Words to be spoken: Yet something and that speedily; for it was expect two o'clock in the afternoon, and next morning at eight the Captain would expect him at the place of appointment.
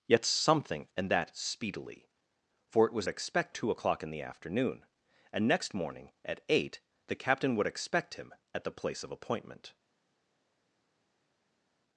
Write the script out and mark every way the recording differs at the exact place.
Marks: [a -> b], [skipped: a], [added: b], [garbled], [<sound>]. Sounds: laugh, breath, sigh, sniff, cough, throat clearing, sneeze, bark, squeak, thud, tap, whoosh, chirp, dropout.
Yet something and that speedily; for it was expect two o'clock in the afternoon, and next morning at eight the Captain would expect him at the place of appointment.